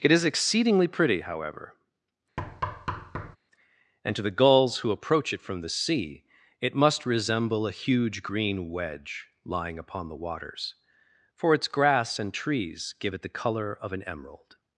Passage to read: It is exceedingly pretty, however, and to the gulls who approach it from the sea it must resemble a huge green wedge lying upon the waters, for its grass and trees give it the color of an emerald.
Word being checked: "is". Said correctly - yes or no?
yes